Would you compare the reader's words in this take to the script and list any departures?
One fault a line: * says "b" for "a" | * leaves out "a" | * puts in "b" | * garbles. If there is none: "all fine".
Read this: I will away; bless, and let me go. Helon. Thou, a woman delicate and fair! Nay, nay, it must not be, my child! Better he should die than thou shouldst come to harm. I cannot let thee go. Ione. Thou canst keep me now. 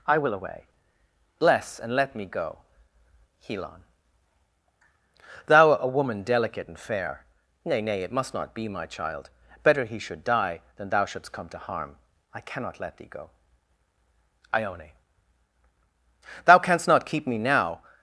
* puts in "not"